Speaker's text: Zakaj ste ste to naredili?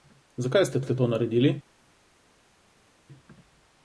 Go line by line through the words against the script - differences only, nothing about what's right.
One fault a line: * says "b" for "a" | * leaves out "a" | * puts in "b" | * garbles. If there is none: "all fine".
all fine